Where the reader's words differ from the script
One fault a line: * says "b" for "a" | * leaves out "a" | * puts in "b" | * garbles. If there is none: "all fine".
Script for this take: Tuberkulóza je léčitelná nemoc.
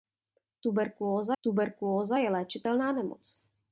* puts in "tuberkulóza"